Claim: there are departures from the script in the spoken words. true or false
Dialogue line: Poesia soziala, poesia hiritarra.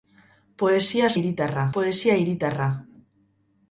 true